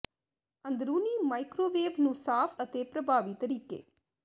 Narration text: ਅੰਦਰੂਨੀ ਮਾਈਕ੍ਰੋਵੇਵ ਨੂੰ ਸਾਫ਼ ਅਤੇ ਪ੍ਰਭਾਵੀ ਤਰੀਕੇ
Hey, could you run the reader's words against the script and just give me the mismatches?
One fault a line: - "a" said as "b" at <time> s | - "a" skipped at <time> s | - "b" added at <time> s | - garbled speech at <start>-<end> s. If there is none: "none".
none